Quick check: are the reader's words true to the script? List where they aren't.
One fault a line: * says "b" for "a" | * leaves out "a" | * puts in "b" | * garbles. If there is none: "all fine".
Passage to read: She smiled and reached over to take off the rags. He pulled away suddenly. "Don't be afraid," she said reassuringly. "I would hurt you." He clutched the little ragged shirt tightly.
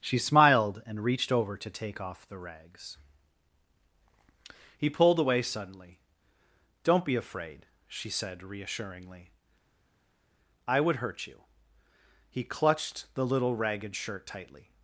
all fine